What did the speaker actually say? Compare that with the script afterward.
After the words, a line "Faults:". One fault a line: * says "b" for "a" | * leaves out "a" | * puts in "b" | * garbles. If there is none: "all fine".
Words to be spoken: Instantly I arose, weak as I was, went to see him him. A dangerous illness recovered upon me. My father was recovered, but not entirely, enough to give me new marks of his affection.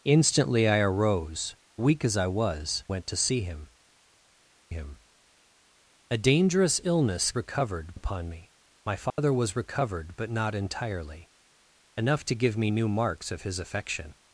Instantly I arose, weak as I was, went to see him him. A dangerous illness recovered upon me. My father was recovered, but not entirely, enough to give me new marks of his affection.
Faults:
all fine